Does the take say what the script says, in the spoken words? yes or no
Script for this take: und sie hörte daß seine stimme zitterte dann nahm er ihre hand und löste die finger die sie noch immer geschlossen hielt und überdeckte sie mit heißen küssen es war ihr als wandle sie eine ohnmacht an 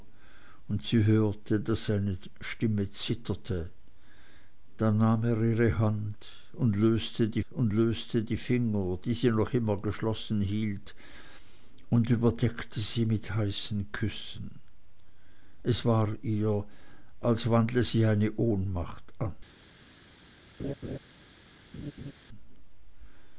no